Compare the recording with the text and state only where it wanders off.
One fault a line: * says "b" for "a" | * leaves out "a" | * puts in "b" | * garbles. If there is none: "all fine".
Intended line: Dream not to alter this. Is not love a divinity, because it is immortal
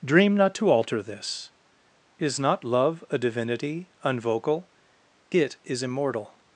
* says "unvocal" for "because"